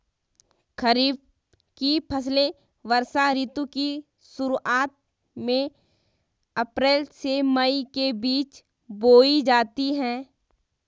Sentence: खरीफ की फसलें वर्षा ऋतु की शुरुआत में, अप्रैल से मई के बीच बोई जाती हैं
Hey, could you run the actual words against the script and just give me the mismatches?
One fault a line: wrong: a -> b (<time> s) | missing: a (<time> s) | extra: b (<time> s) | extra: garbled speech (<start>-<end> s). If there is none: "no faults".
no faults